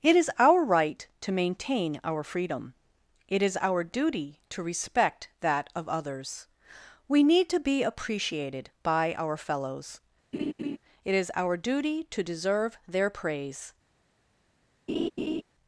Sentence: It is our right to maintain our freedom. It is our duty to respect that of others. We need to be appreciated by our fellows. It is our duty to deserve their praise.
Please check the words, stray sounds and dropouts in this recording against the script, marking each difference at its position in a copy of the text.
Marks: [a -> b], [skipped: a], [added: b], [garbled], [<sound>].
It is our right to maintain our freedom. It is our duty to respect that of others. We need to be appreciated by our fellows. [laugh] It is our duty to deserve their praise. [laugh]